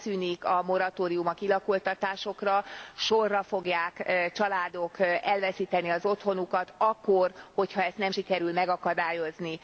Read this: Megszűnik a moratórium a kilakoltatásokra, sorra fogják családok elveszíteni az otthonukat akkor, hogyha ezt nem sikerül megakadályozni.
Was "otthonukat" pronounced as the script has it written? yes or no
yes